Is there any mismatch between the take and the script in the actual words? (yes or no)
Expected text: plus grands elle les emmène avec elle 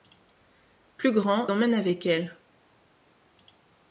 yes